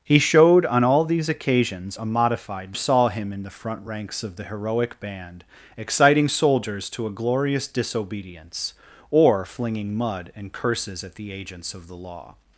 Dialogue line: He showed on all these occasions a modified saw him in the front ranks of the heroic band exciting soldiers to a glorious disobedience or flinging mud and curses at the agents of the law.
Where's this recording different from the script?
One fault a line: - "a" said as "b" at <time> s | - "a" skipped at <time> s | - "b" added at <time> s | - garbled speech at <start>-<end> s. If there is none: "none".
none